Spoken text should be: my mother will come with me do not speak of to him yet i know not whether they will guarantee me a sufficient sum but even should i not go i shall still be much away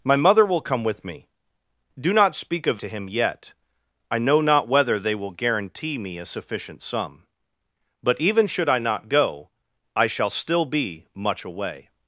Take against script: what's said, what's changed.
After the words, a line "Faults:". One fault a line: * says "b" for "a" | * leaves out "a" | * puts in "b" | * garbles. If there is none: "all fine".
my mother will come with me do not speak of to him yet i know not whether they will guarantee me a sufficient sum but even should i not go i shall still be much away
Faults:
all fine